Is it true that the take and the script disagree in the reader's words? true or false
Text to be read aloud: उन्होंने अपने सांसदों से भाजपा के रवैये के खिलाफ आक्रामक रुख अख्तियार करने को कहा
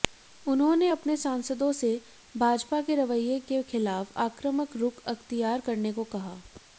false